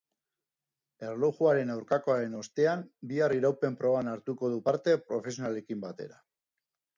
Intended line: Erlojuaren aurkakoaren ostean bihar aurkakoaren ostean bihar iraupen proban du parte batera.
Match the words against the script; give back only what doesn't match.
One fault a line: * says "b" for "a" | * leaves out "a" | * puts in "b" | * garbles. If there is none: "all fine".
* leaves out "aurkakoaren ostean bihar"
* puts in "hartuko"
* puts in "profesionalekin"